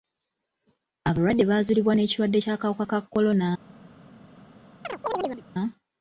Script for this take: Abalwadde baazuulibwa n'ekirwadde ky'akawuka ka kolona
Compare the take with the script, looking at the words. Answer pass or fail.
pass